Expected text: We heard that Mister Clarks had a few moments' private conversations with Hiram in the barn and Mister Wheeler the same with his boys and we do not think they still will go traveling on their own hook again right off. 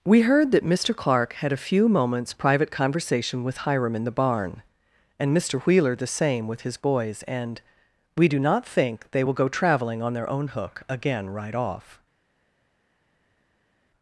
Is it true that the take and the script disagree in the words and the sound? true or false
true